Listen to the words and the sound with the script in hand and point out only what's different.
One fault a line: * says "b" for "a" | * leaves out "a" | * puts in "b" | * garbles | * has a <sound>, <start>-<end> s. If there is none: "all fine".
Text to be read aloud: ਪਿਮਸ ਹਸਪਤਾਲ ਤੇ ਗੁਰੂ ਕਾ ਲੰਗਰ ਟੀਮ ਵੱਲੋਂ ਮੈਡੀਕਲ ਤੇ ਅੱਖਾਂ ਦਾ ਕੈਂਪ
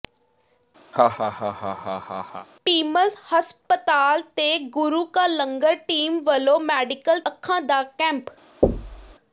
* has a laugh, 0.9-2.5 s
* leaves out "ਤੇ"
* has a thud, 8.6-9.2 s